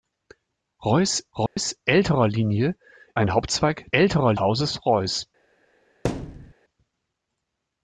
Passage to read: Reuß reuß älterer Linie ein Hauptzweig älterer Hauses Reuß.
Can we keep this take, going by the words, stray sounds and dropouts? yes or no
no